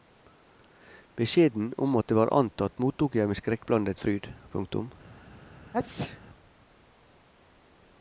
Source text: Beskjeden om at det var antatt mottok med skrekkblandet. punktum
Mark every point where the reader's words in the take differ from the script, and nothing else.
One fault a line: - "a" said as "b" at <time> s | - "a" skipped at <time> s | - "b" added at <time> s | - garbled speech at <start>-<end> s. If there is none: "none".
- "jeg" added at 3.2 s
- "fryd" added at 4.0 s